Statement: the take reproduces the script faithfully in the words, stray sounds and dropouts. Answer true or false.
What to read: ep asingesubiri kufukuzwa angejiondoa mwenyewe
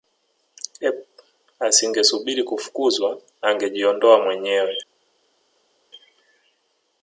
true